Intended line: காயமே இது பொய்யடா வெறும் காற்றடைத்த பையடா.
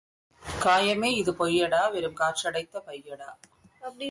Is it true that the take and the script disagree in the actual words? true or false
false